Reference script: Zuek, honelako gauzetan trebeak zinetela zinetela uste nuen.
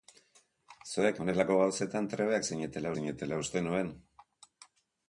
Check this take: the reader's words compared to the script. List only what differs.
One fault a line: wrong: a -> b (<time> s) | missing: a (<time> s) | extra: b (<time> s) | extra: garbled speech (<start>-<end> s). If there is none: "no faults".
no faults